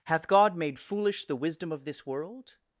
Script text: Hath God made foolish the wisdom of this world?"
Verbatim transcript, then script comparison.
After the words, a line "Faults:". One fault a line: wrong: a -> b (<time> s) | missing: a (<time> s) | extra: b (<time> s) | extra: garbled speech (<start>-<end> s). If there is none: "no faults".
Hath God made foolish the wisdom of this world?"
Faults:
no faults